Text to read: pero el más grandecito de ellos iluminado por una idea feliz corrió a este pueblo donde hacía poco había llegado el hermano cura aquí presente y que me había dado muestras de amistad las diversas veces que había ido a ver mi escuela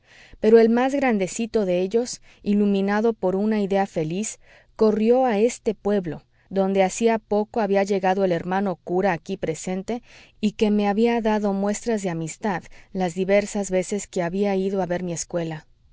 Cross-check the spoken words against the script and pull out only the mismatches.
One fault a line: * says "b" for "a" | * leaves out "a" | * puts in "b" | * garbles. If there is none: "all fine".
all fine